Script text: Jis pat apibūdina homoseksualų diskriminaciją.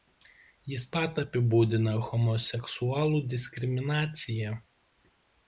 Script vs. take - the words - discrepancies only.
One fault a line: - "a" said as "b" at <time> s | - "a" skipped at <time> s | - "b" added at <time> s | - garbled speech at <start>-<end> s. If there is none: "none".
none